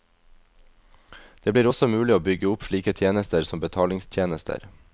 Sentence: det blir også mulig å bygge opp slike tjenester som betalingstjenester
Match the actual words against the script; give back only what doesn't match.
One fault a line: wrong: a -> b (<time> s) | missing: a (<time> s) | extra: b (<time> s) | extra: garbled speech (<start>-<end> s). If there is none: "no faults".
no faults